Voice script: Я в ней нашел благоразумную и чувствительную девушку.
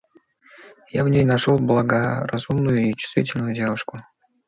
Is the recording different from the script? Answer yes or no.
no